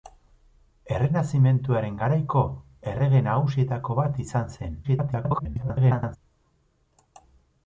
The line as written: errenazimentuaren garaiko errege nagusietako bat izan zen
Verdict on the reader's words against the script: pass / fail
fail